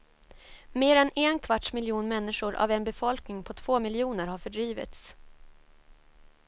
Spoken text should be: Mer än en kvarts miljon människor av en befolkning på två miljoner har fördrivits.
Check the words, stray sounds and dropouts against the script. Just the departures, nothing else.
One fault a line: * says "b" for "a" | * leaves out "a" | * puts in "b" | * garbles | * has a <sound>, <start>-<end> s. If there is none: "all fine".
all fine